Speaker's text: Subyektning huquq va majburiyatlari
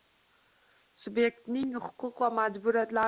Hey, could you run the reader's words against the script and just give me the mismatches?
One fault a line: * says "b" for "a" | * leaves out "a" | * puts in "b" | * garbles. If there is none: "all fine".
all fine